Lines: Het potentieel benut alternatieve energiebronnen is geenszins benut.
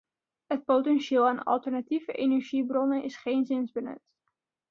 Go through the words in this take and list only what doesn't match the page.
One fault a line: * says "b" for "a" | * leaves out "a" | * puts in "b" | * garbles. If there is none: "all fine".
* says "aan" for "benut"